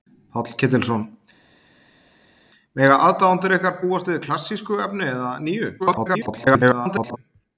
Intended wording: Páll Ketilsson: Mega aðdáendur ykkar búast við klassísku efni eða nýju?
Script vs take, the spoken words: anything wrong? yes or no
yes